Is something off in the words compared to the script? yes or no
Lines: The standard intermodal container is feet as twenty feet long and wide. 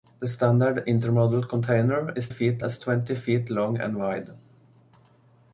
no